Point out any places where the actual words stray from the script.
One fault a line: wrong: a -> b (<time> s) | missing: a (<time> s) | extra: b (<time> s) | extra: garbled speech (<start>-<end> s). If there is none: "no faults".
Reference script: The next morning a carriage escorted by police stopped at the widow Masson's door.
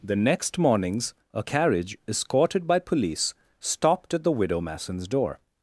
wrong: morning -> mornings (0.6 s)